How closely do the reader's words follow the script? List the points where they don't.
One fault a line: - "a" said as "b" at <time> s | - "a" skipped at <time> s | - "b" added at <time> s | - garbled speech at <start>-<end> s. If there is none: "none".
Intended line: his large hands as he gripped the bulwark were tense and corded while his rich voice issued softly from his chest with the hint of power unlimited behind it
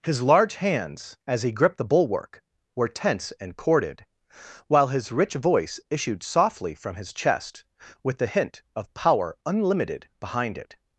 none